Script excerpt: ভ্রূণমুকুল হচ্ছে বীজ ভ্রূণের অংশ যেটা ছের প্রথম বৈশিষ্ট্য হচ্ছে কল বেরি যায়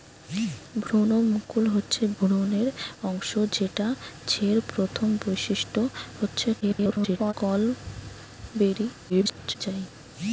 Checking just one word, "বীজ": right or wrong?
wrong